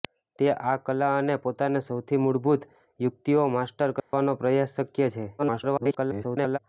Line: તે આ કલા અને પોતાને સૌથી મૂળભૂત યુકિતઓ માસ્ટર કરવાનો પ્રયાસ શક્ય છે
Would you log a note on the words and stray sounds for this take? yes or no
yes